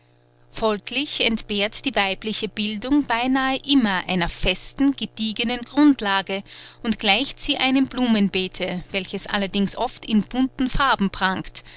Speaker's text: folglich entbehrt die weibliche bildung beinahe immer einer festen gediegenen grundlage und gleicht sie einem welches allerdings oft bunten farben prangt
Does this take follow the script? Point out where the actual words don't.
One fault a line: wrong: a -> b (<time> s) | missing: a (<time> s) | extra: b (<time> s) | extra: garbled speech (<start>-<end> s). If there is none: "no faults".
extra: blumenbeete (7.9 s)
extra: in (10.0 s)